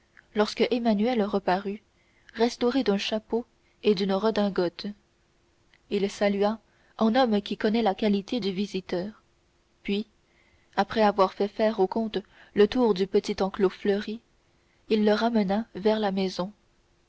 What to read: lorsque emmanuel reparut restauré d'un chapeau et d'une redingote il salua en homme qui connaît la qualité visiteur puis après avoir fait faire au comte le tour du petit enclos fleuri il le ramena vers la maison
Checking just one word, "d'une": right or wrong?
right